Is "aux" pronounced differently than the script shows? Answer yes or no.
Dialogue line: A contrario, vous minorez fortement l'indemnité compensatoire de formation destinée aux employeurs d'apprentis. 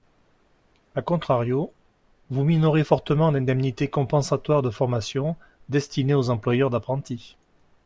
no